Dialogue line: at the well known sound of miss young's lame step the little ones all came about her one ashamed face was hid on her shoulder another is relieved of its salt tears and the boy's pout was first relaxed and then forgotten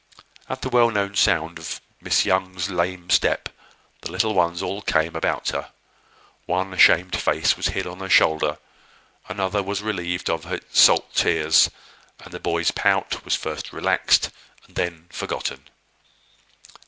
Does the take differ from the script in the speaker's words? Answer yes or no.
yes